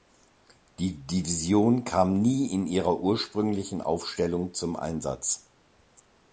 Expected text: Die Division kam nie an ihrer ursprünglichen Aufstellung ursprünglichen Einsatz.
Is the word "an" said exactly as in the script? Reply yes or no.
no